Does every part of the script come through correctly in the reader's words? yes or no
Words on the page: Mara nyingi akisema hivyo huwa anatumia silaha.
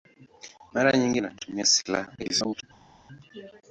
no